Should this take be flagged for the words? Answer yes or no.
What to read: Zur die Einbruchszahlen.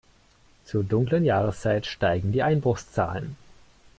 yes